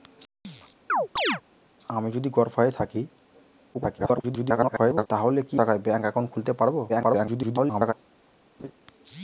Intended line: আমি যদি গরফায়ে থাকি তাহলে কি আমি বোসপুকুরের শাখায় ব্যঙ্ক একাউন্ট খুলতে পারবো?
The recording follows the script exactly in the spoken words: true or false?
false